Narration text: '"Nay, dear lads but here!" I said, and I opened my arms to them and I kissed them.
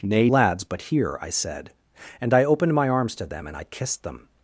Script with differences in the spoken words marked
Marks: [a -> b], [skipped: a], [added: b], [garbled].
'"Nay, [skipped: dear] lads but here!" I said, and I opened my arms to them and I kissed them.